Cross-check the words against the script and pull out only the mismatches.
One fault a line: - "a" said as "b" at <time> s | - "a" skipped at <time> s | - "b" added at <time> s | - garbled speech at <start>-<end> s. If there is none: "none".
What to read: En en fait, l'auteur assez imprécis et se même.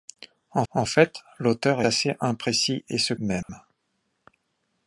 none